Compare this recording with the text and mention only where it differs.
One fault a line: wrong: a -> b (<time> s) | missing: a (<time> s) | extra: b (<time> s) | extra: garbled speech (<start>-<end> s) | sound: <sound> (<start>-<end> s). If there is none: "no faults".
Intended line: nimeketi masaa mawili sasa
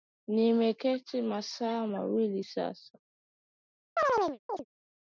sound: chirp (4.0-4.6 s)